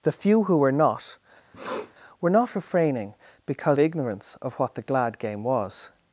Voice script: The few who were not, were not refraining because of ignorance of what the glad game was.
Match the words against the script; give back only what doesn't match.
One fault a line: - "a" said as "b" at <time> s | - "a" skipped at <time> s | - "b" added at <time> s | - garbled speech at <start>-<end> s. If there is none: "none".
- "of" skipped at 3.8 s